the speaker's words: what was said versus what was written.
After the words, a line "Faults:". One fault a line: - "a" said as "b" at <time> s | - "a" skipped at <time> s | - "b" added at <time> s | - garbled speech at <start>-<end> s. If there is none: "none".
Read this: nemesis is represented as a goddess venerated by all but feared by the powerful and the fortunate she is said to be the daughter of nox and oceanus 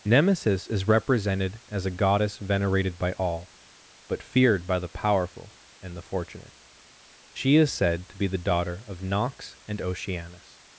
nemesis is represented as a goddess venerated by all but feared by the powerful and the fortunate she is said to be the daughter of nox and oceanus
Faults:
none